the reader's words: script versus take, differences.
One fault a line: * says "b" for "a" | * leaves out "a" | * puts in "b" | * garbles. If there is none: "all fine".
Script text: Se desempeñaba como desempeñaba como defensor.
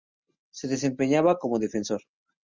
* leaves out "desempeñaba como"